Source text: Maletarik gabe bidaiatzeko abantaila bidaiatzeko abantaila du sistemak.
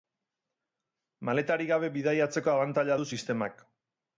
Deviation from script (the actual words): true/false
true